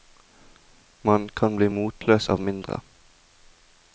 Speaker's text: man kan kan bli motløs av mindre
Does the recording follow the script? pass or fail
fail